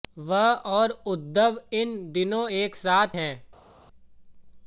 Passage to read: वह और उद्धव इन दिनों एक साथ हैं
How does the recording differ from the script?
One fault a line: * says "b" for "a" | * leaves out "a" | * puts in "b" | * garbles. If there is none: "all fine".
all fine